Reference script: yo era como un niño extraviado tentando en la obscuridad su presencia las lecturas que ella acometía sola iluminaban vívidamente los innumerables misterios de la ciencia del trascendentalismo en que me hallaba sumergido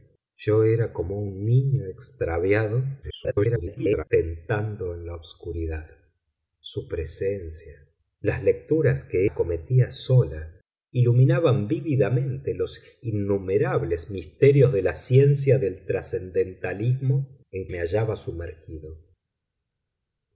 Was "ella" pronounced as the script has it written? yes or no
no